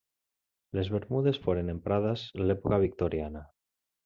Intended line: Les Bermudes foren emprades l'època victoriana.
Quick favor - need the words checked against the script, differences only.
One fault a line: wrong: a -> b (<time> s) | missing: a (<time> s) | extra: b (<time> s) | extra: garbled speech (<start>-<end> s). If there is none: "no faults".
no faults